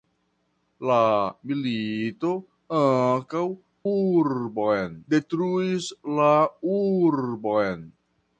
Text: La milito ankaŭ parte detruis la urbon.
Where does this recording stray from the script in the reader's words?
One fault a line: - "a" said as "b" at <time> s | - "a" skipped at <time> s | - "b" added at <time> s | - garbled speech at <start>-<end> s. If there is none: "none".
- "parte" said as "urbon" at 3.9 s